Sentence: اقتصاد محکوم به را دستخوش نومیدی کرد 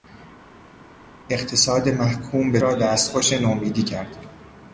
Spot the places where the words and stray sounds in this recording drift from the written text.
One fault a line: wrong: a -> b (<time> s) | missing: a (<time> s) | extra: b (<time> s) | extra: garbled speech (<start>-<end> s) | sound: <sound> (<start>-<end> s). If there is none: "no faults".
no faults